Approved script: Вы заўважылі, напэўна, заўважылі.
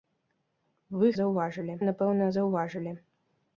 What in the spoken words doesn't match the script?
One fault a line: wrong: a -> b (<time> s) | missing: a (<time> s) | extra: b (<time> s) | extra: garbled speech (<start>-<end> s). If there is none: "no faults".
no faults